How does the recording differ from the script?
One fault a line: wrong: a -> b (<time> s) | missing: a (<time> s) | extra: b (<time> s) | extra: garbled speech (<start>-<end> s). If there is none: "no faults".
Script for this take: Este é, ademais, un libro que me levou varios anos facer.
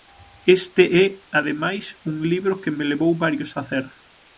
missing: anos (3.5 s)